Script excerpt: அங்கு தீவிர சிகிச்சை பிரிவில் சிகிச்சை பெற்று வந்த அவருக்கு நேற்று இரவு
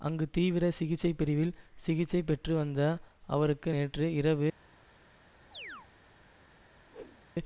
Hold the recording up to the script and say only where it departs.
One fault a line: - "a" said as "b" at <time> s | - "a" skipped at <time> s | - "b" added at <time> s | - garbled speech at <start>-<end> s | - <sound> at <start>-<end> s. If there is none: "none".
- chirp at 5.5-5.9 s
- whoosh at 6.9-7.2 s